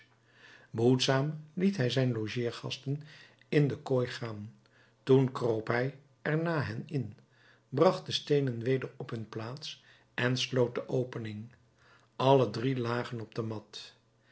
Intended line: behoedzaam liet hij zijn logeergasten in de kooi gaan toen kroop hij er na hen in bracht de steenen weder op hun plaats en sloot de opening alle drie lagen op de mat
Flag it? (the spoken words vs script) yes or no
no